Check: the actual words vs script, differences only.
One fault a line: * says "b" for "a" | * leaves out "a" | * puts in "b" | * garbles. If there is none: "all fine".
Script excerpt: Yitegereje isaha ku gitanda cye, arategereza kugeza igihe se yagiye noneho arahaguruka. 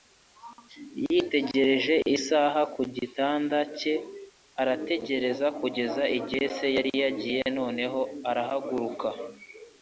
* puts in "yari"